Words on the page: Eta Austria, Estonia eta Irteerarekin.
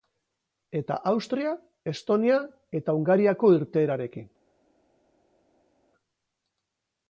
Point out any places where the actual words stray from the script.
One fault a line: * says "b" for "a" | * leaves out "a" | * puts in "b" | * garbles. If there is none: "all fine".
* puts in "Hungariako"